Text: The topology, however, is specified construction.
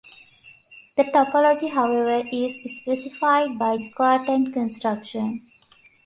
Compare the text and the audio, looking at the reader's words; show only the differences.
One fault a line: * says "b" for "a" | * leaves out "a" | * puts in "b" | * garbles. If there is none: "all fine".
* puts in "by the quotient"